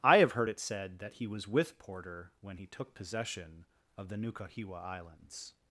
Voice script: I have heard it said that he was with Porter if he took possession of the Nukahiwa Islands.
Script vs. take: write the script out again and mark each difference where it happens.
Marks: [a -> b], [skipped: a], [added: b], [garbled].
I have heard it said that he was with Porter [if -> when] he took possession of the Nukahiwa Islands.